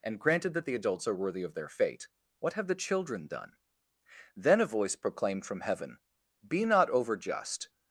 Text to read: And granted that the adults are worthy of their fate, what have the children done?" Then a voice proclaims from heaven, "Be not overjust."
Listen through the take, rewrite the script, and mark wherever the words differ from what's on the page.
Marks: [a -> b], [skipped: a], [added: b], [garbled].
And granted that the adults are worthy of their fate, what have the children done?" Then a voice [proclaims -> proclaimed] from heaven, "Be not overjust."